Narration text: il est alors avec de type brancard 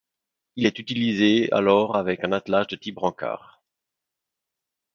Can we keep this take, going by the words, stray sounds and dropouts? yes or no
no